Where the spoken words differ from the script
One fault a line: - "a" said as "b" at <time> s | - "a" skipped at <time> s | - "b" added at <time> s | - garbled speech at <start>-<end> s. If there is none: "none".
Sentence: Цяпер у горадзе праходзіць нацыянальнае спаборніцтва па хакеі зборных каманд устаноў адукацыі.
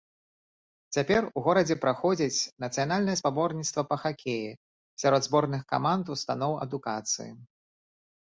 - "сярод" added at 5.0 s